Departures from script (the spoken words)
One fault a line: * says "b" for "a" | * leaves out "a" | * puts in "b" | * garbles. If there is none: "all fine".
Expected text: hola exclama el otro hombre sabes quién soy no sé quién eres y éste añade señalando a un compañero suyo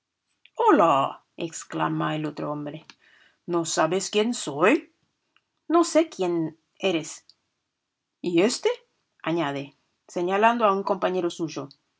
* puts in "no"